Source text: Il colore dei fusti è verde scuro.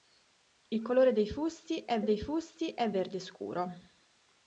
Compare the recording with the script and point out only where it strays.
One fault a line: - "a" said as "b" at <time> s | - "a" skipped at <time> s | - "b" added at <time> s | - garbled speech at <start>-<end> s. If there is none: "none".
- "dei fusti è" added at 2.0 s